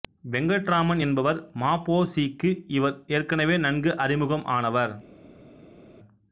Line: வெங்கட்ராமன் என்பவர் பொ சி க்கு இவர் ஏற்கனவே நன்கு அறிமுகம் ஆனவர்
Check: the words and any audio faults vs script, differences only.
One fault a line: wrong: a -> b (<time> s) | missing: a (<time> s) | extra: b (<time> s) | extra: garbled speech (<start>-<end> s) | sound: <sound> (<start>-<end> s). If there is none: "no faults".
extra: ம (1.6 s)